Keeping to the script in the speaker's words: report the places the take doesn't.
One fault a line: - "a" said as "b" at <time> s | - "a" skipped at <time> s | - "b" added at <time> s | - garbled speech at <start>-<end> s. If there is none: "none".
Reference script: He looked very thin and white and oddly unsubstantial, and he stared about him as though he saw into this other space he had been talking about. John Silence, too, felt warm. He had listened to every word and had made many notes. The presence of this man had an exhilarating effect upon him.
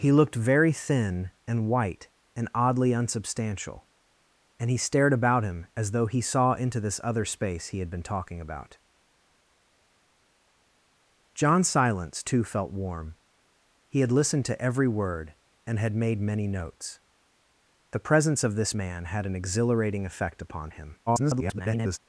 - garbled speech at 21.1-22.0 s